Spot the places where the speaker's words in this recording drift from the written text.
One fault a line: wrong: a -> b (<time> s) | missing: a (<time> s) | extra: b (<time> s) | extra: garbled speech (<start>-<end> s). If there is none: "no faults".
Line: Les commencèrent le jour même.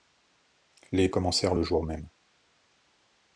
no faults